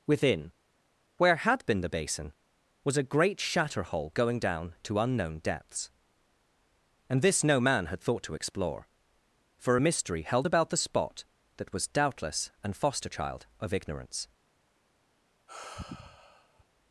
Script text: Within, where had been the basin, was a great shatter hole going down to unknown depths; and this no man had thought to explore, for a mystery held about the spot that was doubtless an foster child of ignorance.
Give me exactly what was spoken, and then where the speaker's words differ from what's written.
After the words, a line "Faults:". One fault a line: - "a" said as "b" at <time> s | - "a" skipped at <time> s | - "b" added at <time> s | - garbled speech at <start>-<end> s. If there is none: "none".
Within, where had been the basin, was a great shatter hole going down to unknown depths; and this no man had thought to explore, for a mystery held about the spot that was doubtless an foster child of ignorance.
Faults:
none